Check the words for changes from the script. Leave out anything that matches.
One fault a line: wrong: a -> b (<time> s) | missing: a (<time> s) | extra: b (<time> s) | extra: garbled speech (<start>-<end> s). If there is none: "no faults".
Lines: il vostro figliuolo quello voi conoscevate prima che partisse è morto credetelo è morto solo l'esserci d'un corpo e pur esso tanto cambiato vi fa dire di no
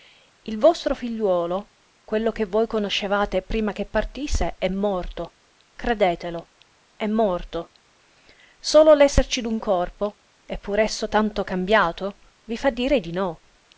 extra: che (2.3 s)